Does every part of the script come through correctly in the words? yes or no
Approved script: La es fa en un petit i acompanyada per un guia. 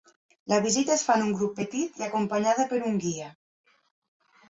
no